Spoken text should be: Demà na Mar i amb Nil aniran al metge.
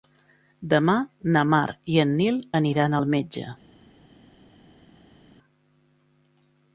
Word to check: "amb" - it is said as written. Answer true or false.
false